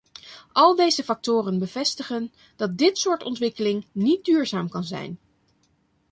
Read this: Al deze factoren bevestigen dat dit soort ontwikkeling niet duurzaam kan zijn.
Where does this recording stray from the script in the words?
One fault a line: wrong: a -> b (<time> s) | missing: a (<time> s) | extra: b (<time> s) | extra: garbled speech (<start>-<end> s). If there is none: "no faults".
no faults